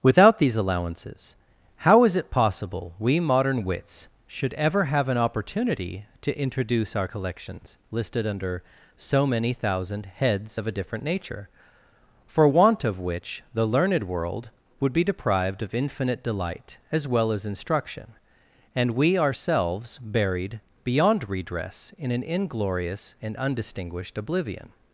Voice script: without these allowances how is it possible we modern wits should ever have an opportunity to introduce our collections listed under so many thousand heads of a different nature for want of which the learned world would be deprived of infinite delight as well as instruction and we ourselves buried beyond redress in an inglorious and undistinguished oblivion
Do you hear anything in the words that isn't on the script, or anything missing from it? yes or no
no